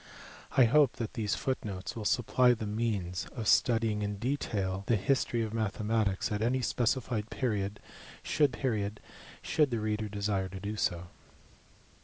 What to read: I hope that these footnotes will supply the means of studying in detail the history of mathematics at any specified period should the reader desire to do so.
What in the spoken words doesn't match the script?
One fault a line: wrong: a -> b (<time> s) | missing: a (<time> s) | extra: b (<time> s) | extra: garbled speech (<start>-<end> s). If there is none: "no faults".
extra: period should (8.5 s)